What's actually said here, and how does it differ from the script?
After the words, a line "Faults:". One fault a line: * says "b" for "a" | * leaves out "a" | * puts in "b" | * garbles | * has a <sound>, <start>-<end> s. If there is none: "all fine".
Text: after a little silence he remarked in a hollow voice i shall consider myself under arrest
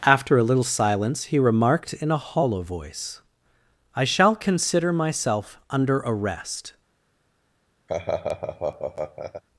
after a little silence he remarked in a hollow voice i shall consider myself under arrest
Faults:
* has a laugh, 7.9-9.4 s